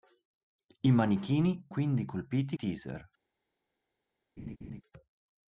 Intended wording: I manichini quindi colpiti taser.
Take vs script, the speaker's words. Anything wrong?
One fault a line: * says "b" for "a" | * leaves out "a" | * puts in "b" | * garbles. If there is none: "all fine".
all fine